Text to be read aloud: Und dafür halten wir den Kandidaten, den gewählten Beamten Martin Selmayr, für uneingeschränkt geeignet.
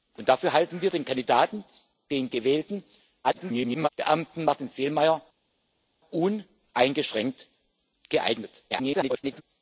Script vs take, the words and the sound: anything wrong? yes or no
yes